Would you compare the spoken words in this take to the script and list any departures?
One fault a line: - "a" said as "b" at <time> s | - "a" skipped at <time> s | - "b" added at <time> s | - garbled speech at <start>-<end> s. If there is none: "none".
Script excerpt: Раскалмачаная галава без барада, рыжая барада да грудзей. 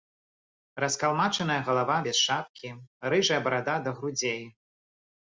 - "барада" said as "шапкі" at 2.2 s